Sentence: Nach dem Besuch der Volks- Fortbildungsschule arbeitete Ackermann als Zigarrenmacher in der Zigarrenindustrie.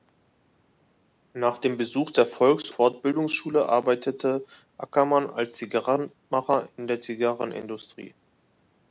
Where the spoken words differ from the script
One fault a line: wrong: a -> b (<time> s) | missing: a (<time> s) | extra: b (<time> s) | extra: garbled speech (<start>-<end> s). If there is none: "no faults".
no faults